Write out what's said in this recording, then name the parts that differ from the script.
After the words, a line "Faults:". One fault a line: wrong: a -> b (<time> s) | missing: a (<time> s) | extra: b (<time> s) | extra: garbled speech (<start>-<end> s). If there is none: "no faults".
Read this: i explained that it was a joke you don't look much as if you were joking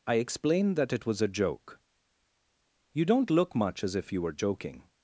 i explained that it was a joke you don't look much as if you were joking
Faults:
no faults